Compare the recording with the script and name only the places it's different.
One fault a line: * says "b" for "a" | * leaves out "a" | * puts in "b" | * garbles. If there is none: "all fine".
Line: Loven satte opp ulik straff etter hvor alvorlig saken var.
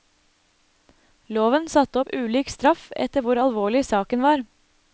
all fine